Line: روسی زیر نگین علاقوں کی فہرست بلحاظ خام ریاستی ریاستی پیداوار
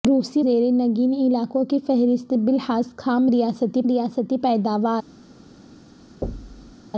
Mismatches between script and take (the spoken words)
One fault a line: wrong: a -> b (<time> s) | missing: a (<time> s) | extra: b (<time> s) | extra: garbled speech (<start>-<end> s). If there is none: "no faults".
no faults